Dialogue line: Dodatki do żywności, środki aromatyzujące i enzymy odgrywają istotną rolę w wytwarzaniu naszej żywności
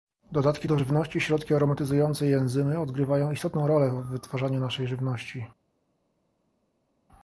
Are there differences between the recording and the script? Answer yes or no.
no